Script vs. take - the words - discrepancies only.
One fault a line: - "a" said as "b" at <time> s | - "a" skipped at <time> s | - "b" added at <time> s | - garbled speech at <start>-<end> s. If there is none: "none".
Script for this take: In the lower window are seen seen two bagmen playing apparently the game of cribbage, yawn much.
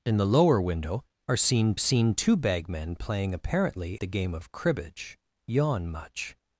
none